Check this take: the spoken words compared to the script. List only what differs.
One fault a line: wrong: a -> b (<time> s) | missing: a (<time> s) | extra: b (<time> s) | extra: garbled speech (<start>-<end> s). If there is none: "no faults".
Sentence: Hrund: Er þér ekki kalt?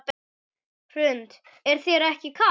no faults